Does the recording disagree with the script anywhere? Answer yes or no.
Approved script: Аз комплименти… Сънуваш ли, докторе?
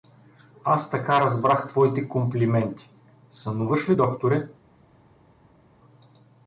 yes